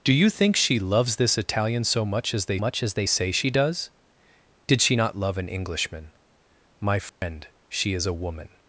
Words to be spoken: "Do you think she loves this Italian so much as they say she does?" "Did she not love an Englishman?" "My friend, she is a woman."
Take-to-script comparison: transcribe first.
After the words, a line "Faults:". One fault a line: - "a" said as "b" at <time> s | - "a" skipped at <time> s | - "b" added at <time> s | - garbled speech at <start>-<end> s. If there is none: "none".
"Do you think she loves this Italian so much as they much as they say she does?" "Did she not love an Englishman?" "My friend, she is a woman."
Faults:
- "much as they" added at 2.6 s